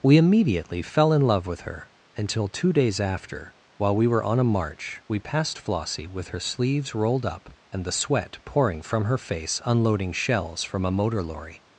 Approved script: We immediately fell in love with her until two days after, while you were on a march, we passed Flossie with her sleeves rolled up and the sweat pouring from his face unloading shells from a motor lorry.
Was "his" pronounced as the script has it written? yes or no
no